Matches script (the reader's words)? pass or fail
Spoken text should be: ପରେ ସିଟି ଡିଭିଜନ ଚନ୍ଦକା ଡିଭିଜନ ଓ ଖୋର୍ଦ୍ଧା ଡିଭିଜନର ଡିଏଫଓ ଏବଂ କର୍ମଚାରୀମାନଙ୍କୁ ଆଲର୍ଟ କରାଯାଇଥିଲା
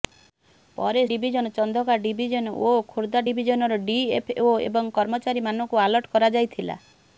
fail